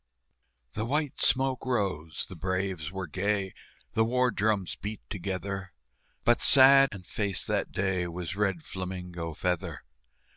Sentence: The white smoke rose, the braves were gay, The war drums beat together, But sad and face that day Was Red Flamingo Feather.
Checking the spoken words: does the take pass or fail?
pass